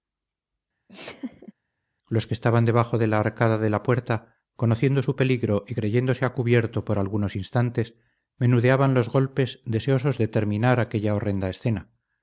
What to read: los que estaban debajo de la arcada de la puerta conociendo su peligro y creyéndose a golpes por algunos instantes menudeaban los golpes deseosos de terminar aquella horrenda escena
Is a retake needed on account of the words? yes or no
yes